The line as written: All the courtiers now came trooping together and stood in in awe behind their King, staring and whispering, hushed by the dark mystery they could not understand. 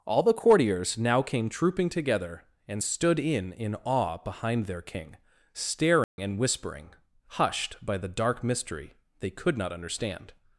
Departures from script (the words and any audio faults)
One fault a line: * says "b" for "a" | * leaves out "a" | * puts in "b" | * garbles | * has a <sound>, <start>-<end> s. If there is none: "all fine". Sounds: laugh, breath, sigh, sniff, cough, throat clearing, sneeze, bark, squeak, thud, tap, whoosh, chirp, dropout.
* has a dropout, 6.0-6.2 s